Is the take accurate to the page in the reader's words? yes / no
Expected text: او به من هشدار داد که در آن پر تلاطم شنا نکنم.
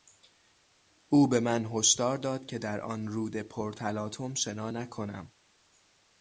no